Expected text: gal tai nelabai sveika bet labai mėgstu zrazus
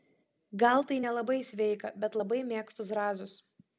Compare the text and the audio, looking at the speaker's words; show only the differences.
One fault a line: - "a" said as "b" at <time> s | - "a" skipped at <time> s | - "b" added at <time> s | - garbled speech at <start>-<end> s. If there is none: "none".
none